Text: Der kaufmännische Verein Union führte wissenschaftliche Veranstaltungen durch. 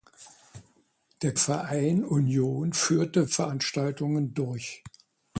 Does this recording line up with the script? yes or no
no